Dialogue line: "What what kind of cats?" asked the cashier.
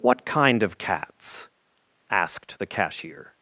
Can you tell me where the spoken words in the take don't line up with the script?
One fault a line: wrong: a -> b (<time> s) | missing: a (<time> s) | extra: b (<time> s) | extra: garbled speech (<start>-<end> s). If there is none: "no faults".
missing: what (0.2 s)